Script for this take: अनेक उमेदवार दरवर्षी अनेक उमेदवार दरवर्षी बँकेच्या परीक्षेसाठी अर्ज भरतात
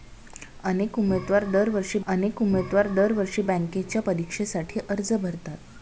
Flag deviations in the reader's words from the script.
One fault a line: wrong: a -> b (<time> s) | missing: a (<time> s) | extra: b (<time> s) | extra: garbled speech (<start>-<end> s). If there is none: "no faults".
no faults